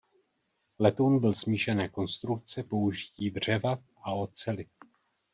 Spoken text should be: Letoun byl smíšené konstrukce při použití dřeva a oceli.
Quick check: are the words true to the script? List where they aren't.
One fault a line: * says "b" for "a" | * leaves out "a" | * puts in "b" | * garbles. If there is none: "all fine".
* leaves out "při"